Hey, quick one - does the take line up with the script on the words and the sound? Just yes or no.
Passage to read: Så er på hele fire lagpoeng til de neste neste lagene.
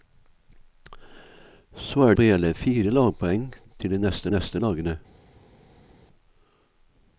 yes